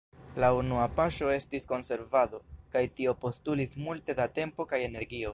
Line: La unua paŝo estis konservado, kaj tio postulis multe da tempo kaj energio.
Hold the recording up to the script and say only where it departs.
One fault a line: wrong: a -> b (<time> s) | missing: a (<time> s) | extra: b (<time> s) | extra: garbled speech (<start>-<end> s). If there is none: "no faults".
no faults